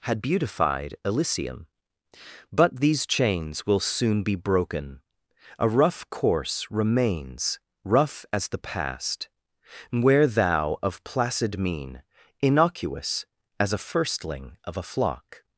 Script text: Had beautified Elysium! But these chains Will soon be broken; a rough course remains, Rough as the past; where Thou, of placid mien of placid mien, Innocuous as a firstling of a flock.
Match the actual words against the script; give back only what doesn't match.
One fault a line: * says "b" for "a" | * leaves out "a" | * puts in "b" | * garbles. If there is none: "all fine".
* leaves out "of placid mien"